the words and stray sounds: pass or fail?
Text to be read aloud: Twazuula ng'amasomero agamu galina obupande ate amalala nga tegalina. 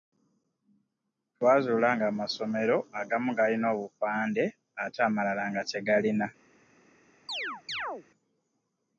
fail